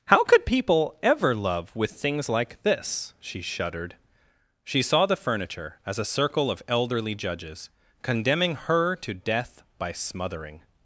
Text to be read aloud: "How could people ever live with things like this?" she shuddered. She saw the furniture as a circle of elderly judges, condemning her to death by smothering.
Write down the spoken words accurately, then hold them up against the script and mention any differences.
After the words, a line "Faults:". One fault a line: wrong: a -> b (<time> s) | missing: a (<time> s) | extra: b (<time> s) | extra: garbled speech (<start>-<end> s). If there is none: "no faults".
"How could people ever love with things like this?" she shuddered. She saw the furniture as a circle of elderly judges, condemning her to death by smothering.
Faults:
wrong: live -> love (1.4 s)